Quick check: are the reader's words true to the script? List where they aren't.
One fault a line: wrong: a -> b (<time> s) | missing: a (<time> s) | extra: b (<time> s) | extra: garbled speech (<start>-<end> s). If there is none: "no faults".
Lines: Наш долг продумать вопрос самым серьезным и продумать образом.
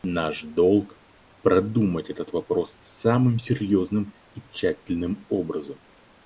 extra: этот (2.1 s)
wrong: продумать -> тщательным (4.5 s)